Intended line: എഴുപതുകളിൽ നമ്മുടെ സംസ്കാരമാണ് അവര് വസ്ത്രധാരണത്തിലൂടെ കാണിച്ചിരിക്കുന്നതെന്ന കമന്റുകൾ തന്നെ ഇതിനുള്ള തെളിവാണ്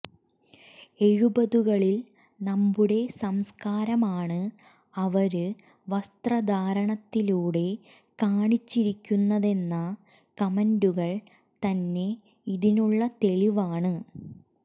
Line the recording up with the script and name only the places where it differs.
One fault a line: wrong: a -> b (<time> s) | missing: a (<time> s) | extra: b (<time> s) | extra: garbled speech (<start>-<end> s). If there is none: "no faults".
no faults